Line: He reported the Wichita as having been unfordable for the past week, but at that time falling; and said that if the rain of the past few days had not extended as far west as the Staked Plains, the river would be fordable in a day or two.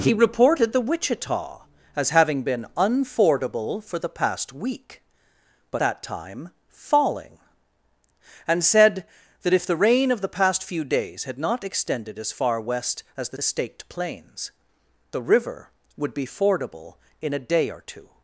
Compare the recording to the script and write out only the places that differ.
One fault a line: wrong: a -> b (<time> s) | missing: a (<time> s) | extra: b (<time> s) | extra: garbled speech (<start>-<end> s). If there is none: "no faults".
missing: at (5.8 s)
extra: the (13.3 s)